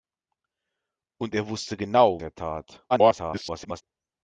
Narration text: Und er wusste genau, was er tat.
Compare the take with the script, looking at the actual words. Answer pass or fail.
fail